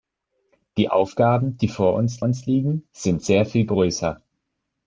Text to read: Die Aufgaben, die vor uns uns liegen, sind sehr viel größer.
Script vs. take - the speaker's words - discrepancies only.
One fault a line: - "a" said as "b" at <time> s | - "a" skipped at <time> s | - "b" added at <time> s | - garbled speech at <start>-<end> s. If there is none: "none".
none